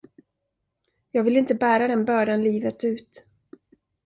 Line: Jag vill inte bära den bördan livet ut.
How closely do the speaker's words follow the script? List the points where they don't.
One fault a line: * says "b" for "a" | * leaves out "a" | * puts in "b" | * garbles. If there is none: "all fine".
all fine